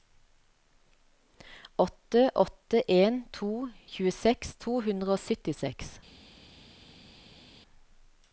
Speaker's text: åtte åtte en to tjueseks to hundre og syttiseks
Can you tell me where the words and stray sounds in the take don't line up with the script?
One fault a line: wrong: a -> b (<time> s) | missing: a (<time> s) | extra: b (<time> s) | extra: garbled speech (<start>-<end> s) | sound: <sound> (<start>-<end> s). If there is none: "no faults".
no faults